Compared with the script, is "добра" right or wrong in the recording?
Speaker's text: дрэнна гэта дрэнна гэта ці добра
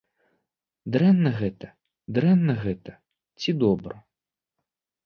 right